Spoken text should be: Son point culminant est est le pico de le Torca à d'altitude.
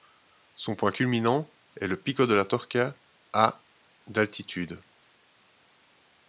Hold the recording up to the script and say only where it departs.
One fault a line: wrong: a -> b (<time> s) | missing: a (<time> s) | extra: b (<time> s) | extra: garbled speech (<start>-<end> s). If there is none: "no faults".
missing: est (1.9 s)
wrong: le -> la (2.3 s)